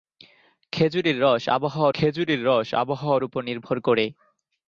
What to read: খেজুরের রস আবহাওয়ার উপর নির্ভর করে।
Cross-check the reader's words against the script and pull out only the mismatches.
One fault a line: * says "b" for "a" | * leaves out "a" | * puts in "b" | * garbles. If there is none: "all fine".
* puts in "খেজুরের রস আবহাওয়ার"